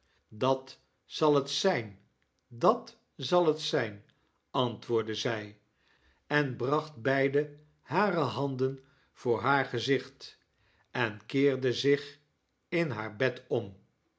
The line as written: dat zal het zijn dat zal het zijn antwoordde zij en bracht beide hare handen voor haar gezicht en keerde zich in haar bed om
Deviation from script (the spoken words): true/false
false